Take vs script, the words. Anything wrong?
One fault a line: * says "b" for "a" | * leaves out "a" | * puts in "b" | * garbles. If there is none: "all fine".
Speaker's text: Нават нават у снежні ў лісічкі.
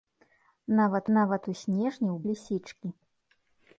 all fine